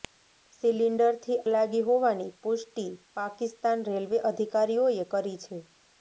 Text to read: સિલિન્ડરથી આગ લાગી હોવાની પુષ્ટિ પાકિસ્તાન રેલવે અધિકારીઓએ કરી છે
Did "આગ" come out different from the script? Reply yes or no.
yes